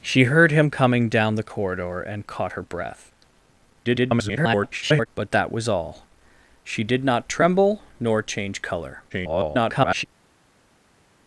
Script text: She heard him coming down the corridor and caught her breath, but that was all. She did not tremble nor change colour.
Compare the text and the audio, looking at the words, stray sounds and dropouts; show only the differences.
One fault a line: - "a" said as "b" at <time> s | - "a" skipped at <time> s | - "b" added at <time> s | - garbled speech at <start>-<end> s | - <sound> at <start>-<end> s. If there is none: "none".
- garbled speech at 3.8-5.1 s
- garbled speech at 9.1-10.0 s